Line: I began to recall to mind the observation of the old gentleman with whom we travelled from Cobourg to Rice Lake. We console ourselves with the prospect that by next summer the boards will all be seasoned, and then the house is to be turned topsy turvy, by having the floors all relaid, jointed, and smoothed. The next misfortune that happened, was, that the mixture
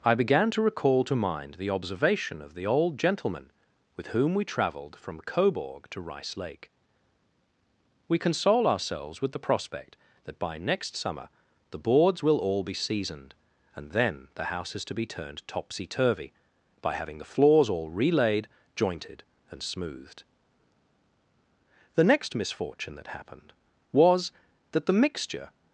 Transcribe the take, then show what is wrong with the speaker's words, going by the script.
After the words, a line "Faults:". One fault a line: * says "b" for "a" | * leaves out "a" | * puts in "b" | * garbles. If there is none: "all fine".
I began to recall to mind the observation of the old gentleman with whom we travelled from Cobourg to Rice Lake. We console ourselves with the prospect that by next summer the boards will all be seasoned, and then the house is to be turned topsy turvy, by having the floors all relaid, jointed, and smoothed. The next misfortune that happened, was, that the mixture
Faults:
all fine